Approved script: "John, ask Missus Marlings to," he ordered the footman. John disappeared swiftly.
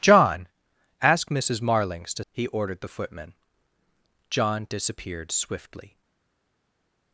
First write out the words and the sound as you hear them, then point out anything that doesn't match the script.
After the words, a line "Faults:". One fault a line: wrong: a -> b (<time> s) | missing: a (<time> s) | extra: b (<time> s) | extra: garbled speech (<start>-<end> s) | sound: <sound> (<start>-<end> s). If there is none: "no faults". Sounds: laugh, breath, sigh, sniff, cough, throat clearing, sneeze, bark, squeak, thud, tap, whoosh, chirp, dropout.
"John, ask Missus Marlings to," he ordered the footman. John disappeared swiftly.
Faults:
no faults